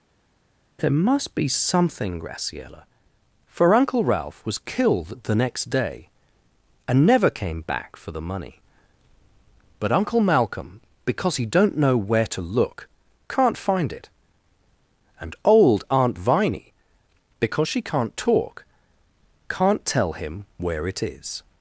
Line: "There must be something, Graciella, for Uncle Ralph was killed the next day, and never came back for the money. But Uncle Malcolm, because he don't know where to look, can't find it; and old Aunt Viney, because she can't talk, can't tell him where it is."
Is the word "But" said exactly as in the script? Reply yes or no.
yes